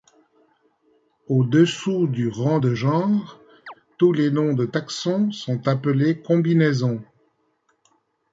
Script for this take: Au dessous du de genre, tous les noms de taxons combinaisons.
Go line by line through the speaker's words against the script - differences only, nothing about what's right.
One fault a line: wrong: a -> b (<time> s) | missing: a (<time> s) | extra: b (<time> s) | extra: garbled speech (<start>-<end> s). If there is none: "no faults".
extra: rang (2.3 s)
extra: sont appelés (5.3 s)